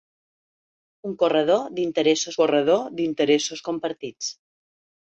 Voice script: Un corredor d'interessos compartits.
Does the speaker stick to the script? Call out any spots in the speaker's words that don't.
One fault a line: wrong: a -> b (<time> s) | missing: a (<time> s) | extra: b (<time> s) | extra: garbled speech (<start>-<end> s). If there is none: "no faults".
extra: corredor d'interessos (2.4 s)